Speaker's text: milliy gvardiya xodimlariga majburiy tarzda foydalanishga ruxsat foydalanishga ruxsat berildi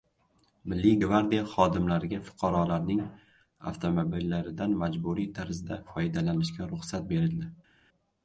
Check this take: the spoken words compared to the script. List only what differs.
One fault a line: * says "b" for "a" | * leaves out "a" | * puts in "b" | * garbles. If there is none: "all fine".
* puts in "fuqarolarning avtomobillaridan"
* leaves out "foydalanishga ruxsat"